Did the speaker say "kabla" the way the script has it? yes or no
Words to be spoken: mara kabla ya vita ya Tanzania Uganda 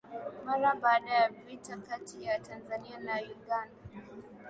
no